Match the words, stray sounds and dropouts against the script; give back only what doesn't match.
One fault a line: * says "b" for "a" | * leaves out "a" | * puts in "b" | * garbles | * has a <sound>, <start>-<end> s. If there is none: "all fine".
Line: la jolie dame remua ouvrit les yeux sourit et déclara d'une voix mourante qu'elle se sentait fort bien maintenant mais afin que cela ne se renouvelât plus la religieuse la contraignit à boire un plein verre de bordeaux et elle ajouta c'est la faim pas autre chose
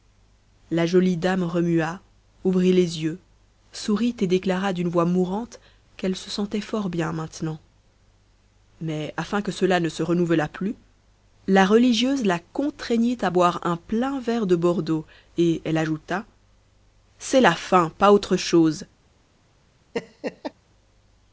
* has a laugh, 19.9-20.5 s